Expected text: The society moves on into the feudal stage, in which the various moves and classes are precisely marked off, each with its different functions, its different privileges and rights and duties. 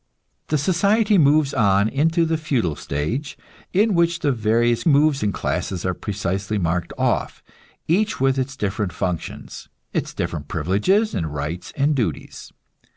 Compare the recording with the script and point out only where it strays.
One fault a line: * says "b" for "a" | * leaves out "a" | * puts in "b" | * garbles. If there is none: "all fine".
all fine